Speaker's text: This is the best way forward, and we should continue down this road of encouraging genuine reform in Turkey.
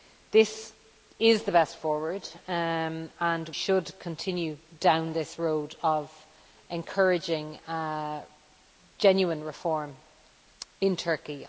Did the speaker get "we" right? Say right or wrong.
wrong